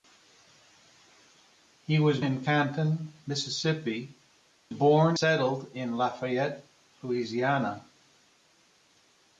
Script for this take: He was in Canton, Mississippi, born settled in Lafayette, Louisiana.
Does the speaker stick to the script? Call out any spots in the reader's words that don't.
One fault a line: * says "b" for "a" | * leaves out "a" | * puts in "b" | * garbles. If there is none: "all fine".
all fine